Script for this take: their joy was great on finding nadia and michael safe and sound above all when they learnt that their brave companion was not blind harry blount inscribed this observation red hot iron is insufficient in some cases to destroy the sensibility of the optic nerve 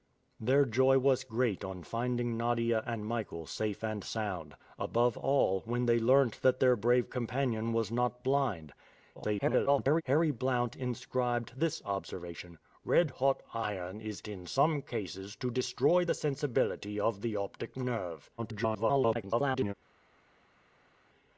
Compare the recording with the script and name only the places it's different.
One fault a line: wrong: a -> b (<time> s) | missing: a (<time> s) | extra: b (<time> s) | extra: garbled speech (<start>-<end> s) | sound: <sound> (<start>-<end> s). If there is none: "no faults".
extra: garbled speech (9.1-10.0 s)
missing: insufficient (14.2 s)
extra: garbled speech (18.4-19.7 s)